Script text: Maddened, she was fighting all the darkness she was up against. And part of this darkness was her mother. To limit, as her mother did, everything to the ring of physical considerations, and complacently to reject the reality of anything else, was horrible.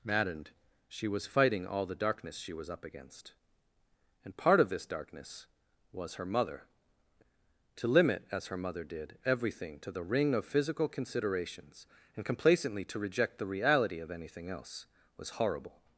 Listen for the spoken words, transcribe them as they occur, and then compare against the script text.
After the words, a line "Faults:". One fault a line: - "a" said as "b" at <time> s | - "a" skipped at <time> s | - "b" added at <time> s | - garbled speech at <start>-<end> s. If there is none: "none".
Maddened, she was fighting all the darkness she was up against. And part of this darkness was her mother. To limit, as her mother did, everything to the ring of physical considerations, and complacently to reject the reality of anything else, was horrible.
Faults:
none